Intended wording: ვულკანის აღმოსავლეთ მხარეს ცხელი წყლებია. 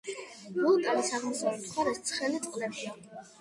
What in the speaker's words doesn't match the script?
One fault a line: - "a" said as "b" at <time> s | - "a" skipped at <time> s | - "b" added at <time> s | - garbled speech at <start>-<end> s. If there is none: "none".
none